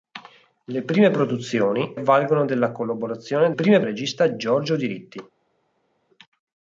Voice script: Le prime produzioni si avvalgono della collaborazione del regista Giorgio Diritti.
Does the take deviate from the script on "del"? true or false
true